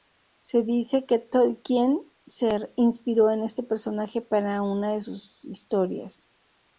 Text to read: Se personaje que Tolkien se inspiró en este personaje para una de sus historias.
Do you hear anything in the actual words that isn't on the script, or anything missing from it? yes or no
yes